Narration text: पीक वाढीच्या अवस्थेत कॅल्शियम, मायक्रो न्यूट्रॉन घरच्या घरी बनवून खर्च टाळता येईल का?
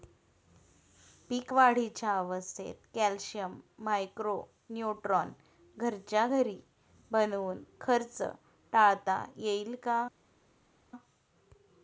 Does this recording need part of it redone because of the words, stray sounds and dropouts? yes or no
no